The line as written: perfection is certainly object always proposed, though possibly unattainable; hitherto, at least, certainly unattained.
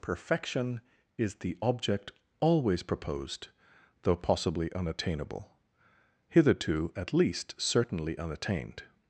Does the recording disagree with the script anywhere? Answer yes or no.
yes